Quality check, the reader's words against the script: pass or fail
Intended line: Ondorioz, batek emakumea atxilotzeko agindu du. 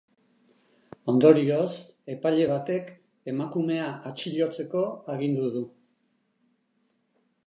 fail